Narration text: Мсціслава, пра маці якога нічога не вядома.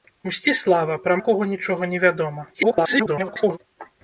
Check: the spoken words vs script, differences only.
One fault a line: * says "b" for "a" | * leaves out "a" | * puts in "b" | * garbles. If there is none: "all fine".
* leaves out "маці"
* garbles